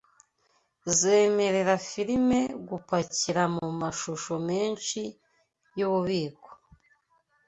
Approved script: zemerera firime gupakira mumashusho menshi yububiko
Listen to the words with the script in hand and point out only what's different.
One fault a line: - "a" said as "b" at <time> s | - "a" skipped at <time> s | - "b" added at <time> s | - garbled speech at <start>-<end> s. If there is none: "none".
none